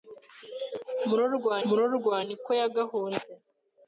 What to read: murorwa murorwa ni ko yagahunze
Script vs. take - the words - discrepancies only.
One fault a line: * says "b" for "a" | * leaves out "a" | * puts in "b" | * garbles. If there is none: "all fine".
all fine